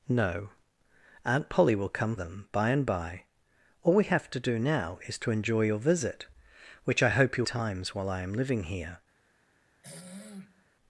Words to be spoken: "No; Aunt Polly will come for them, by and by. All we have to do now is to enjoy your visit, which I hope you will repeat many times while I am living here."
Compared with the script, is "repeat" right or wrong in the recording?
wrong